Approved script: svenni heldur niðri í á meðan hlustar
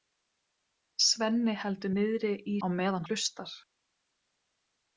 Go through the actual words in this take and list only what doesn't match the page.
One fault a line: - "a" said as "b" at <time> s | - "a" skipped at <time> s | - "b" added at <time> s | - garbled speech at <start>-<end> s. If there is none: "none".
none